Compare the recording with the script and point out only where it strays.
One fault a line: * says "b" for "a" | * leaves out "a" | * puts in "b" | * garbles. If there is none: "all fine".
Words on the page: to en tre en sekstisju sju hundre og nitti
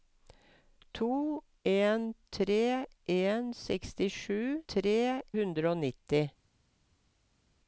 * says "tre" for "sju"